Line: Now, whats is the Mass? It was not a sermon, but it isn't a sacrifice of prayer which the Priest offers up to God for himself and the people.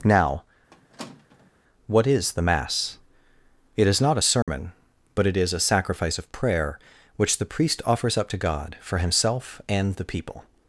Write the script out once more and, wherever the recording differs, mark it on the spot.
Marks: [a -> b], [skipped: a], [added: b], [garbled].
Now, [whats -> what] is the Mass? It [was -> is] not a sermon, but it [isn't -> is] a sacrifice of prayer which the Priest offers up to God for himself and the people.